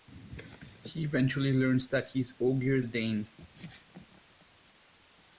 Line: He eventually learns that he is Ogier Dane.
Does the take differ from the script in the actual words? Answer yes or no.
no